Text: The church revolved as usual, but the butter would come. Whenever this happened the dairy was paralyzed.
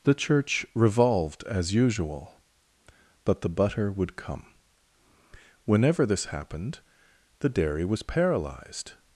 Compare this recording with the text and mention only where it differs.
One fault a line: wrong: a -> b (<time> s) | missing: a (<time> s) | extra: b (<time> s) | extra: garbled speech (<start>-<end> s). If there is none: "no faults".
no faults